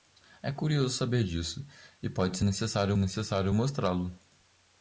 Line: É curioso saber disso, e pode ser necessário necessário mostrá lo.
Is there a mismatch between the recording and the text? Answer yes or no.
no